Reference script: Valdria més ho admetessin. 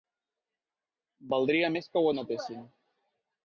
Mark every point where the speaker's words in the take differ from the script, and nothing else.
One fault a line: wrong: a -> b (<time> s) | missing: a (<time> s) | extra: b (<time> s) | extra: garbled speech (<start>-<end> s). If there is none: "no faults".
extra: que (1.9 s)